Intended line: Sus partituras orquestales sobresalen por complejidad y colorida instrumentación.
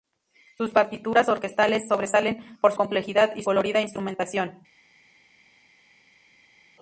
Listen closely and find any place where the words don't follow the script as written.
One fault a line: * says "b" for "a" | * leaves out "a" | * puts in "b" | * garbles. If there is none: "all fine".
all fine